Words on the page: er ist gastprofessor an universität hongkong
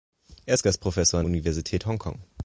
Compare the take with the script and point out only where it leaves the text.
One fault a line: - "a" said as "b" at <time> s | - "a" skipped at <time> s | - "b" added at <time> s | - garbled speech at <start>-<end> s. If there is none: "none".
none